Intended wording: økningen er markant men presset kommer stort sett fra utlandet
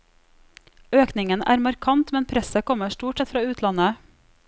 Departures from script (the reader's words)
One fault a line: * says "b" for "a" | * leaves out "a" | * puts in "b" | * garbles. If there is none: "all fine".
all fine